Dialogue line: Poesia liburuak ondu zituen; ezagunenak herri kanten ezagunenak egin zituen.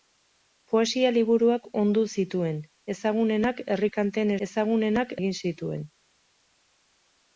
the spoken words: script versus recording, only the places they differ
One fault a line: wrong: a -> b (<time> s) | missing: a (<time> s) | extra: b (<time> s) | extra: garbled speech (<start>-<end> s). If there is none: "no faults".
no faults